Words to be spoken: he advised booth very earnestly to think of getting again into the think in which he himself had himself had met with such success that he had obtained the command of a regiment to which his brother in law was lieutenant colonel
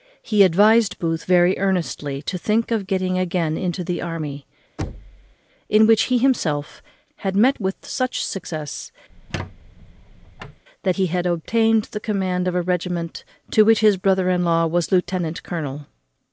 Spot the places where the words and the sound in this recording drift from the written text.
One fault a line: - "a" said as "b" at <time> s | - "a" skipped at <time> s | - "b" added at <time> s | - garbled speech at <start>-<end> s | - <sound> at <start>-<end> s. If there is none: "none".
- "think" said as "army" at 4.0 s
- thud at 4.8-5.4 s
- "himself had" skipped at 7.4 s
- squeak at 9.1-10.6 s